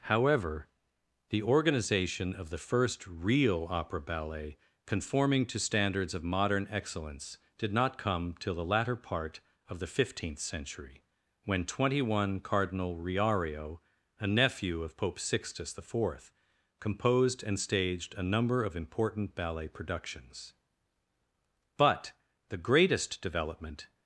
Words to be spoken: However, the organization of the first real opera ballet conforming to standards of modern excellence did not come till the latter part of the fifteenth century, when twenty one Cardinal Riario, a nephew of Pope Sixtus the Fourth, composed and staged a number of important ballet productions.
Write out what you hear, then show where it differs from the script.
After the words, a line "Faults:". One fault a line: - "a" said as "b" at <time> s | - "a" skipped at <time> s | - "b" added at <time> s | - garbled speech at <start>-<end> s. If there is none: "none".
However, the organization of the first real opera ballet conforming to standards of modern excellence did not come till the latter part of the fifteenth century, when twenty one Cardinal Riario, a nephew of Pope Sixtus the Fourth, composed and staged a number of important ballet productions. But the greatest development
Faults:
- "But the greatest development" added at 21.8 s